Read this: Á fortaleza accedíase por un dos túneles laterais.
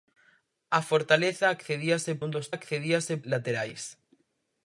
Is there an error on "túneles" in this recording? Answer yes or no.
yes